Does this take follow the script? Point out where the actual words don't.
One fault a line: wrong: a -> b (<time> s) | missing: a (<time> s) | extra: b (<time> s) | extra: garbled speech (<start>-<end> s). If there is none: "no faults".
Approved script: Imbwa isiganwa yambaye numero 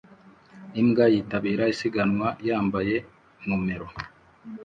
extra: yitabira (1.1 s)